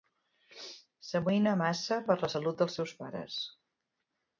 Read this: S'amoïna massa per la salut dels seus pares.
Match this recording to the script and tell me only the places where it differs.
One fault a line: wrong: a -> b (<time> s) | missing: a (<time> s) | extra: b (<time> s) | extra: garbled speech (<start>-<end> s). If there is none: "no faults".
no faults